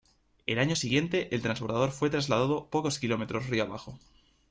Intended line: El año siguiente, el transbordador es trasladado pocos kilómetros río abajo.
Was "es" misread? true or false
true